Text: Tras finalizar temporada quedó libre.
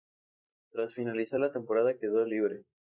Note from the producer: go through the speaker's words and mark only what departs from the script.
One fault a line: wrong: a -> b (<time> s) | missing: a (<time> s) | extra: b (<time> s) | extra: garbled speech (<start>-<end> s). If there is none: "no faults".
extra: la (1.4 s)